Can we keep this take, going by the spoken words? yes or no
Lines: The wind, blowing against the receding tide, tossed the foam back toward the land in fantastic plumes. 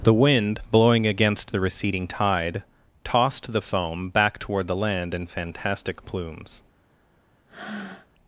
yes